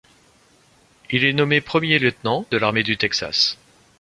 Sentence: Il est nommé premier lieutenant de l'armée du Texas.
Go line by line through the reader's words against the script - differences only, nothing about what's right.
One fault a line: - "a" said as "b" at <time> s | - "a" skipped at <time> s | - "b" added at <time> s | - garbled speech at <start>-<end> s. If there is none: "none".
none